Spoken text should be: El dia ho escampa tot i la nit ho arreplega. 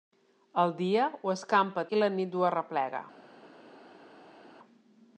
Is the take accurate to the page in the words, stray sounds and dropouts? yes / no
no